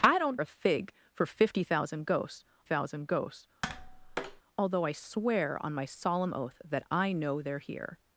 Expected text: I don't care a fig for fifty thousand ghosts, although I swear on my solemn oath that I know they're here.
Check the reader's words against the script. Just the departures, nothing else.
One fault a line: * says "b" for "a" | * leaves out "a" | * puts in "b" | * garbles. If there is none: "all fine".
* leaves out "care"
* puts in "thousand ghosts"